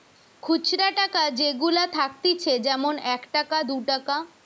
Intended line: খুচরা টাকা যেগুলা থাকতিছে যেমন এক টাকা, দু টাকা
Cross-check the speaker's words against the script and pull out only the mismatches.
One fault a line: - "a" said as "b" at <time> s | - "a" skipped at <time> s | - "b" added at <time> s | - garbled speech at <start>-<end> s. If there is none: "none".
none